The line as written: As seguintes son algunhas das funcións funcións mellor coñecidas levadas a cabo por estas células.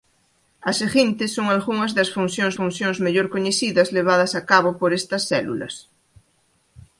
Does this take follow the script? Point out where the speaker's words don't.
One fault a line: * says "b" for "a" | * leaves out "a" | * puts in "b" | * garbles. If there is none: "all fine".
all fine